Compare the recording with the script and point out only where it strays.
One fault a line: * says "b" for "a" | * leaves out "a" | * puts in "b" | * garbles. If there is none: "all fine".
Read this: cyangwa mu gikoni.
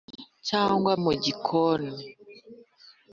all fine